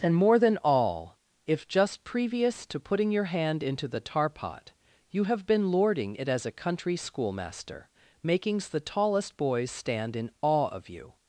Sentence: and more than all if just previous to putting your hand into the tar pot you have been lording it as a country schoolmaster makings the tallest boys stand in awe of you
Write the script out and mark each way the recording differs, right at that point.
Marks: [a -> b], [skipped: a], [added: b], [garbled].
and more than all if just previous to putting your hand into the tar pot you have been lording it as a country schoolmaster makings the tallest boys stand in awe of you